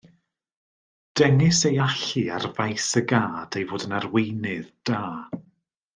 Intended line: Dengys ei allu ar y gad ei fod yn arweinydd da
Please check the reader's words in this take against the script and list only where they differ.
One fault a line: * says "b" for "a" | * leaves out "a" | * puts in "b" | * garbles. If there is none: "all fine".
* puts in "faes"